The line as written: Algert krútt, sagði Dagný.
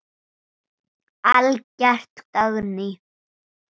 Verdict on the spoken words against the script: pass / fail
fail